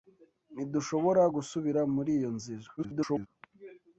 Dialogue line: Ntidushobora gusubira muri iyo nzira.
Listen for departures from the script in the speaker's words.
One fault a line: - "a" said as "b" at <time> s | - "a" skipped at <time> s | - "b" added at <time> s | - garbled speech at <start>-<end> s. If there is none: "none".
- garbled speech at 2.8-3.3 s